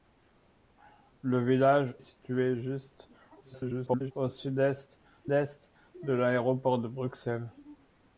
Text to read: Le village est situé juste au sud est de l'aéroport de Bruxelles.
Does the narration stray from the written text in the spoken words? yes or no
yes